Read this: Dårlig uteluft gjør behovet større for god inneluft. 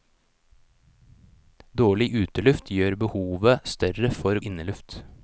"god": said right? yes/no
no